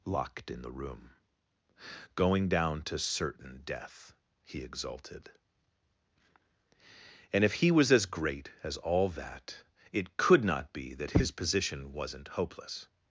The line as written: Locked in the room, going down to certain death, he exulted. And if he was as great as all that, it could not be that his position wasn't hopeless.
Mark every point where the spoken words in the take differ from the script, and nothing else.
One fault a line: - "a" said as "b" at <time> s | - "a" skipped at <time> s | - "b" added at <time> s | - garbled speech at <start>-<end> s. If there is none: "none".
none